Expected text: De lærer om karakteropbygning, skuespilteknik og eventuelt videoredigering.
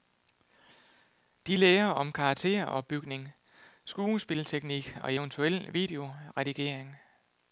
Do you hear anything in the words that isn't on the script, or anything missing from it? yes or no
no